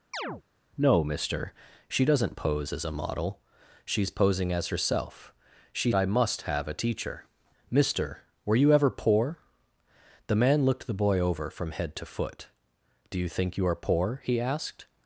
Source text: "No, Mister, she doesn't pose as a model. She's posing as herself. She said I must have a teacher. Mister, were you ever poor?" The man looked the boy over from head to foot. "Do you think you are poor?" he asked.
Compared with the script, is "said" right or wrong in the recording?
wrong